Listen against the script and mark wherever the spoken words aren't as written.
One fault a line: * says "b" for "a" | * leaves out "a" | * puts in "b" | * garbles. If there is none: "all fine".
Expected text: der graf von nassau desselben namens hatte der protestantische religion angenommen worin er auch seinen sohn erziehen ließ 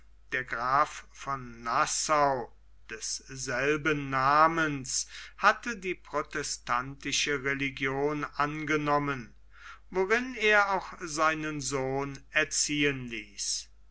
* says "die" for "der"